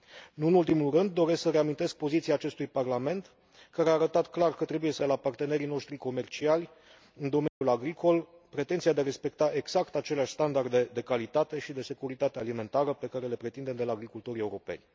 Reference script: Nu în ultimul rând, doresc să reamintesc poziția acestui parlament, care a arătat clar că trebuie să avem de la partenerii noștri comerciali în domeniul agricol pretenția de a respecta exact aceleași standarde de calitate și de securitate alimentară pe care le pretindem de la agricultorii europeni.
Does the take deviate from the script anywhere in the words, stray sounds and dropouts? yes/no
yes